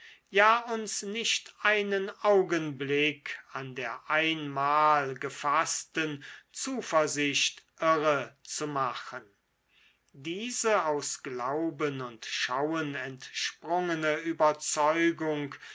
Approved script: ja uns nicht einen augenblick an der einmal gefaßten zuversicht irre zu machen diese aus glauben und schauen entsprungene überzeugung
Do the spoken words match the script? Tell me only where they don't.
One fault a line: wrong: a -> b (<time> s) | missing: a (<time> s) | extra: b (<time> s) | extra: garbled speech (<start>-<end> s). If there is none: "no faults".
no faults